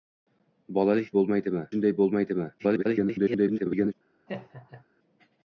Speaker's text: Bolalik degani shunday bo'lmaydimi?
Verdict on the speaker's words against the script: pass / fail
fail